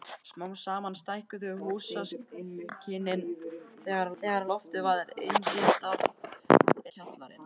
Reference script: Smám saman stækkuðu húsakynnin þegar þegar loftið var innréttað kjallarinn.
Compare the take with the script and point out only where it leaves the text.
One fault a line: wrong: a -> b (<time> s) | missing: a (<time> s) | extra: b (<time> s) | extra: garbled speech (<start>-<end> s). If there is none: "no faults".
no faults